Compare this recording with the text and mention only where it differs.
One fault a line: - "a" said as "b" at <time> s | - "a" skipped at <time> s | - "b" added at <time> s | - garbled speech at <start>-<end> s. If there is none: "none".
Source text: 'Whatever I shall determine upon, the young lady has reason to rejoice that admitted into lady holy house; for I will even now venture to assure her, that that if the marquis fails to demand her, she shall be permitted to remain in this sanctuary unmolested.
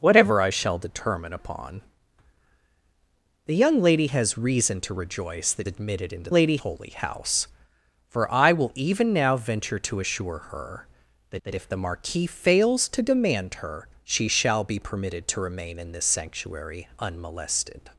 none